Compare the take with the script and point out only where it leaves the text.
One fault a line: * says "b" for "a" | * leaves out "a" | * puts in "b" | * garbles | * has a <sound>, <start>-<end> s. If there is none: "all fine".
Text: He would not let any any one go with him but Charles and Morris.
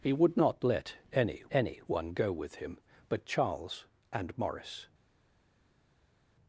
all fine